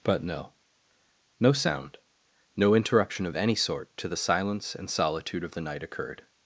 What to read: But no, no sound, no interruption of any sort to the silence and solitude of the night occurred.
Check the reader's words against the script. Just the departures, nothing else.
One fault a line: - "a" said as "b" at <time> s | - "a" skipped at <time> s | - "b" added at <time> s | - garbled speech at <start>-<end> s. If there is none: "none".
none